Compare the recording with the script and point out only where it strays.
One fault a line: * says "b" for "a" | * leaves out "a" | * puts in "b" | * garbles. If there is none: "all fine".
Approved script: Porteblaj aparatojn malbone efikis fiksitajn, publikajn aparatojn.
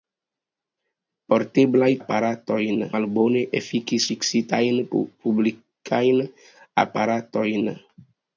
all fine